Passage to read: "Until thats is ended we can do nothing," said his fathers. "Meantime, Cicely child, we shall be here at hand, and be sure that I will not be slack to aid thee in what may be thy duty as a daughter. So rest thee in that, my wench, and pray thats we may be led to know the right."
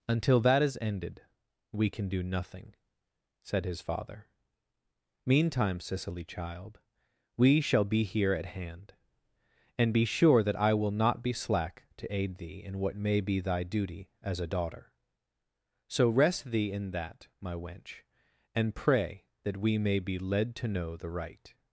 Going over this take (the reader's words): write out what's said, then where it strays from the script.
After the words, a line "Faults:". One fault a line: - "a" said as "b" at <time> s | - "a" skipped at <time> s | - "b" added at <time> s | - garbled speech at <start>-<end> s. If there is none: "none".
"Until that is ended we can do nothing," said his father. "Meantime, Cicely child, we shall be here at hand, and be sure that I will not be slack to aid thee in what may be thy duty as a daughter. So rest thee in that, my wench, and pray that we may be led to know the right."
Faults:
- "thats" said as "that" at 0.4 s
- "fathers" said as "father" at 3.8 s
- "thats" said as "that" at 19.4 s